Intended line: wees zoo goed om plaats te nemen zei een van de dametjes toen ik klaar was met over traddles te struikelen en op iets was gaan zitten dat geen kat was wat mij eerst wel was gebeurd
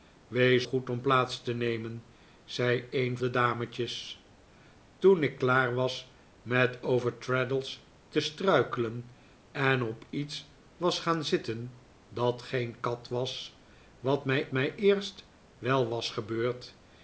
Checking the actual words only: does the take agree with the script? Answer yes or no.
no